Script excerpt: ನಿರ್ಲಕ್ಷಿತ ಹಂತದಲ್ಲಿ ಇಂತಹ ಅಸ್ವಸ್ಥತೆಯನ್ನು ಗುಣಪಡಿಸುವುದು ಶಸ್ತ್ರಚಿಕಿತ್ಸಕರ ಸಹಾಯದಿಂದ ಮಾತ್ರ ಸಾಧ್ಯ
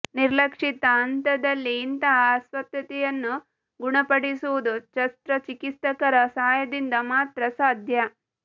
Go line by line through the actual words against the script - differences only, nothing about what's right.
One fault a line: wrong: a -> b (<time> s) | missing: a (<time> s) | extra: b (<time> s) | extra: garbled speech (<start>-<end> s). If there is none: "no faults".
no faults